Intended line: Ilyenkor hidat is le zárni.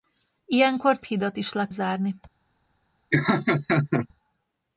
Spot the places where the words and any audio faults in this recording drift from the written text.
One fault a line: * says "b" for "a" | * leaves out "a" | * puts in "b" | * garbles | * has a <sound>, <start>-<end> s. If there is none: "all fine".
* has a laugh, 3.1-4.1 s